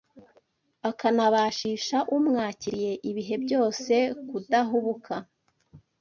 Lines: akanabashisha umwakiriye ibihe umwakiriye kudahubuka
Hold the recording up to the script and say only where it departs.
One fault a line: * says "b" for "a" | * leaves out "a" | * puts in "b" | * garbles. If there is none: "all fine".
* says "byose" for "umwakiriye"